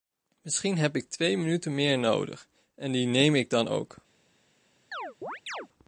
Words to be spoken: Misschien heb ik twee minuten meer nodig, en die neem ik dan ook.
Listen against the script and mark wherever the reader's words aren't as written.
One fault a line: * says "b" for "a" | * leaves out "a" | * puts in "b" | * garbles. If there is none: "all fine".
all fine